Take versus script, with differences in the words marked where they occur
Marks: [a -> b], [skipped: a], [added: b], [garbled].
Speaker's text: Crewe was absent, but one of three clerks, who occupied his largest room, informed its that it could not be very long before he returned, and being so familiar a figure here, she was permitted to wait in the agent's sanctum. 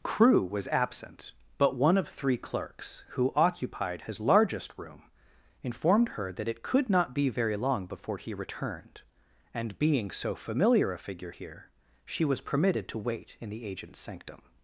Crewe was absent, but one of three clerks, who occupied his largest room, informed [its -> her] that it could not be very long before he returned, and being so familiar a figure here, she was permitted to wait in the agent's sanctum.